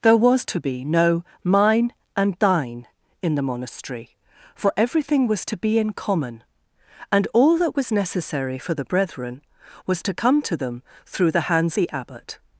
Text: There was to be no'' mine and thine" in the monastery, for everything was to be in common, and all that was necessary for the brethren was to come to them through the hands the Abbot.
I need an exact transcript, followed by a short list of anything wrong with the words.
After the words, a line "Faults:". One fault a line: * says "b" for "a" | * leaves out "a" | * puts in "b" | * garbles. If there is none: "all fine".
There was to be no'' mine and thine" in the monastery, for everything was to be in common, and all that was necessary for the brethren was to come to them through the hands the Abbot.
Faults:
all fine